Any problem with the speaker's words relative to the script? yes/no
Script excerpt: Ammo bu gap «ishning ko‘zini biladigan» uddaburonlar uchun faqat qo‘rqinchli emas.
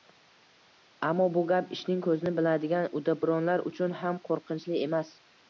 yes